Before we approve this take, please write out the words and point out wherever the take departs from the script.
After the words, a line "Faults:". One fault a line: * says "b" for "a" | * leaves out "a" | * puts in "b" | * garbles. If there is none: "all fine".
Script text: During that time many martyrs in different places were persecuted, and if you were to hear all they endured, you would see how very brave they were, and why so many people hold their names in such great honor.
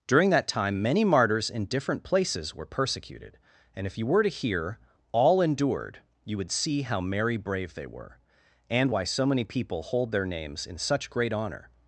During that time many martyrs in different places were persecuted, and if you were to hear all endured, you would see how merry brave they were, and why so many people hold their names in such great honor.
Faults:
* leaves out "they"
* says "merry" for "very"